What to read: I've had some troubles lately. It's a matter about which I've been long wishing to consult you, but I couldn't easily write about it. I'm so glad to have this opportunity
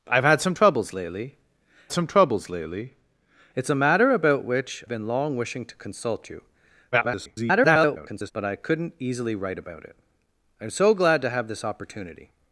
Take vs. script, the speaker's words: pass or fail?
fail